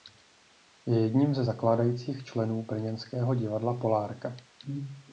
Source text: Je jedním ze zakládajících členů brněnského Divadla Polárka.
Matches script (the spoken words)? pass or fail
pass